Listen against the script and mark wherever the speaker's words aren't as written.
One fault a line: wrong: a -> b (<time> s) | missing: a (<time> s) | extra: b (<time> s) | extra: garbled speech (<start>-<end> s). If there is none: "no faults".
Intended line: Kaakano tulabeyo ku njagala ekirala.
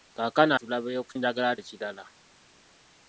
no faults